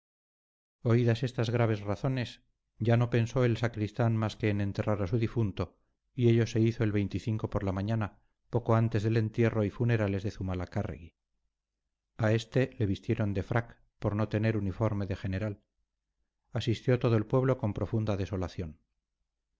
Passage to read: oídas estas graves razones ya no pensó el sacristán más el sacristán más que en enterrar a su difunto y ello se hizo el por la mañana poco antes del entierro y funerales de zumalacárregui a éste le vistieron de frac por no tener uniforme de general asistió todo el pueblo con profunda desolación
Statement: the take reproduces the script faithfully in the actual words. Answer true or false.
false